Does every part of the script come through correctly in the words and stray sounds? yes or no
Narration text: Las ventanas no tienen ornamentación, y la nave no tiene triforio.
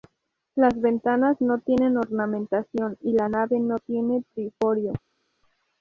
yes